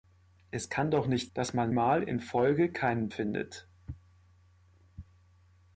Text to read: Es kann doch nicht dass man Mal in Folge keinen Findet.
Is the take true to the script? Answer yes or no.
yes